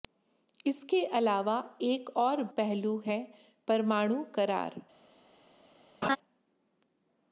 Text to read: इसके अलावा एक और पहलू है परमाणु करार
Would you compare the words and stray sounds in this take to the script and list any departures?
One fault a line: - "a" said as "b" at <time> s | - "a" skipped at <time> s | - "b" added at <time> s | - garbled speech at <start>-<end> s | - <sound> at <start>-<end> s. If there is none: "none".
- laugh at 6.0-6.2 s